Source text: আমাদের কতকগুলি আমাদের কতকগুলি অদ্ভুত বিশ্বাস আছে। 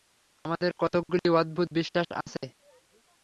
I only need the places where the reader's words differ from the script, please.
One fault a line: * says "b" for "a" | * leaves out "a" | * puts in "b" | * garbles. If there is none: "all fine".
* leaves out "আমাদের কতকগুলি"